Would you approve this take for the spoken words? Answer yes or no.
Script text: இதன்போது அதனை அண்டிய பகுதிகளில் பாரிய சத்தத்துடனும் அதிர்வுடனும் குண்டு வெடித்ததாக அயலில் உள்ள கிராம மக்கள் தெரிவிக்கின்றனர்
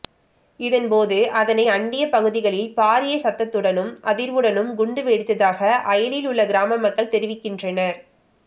yes